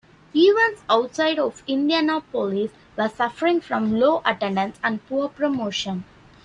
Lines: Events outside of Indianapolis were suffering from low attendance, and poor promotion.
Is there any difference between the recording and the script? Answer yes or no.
no